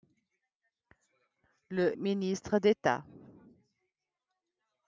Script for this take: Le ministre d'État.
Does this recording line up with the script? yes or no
yes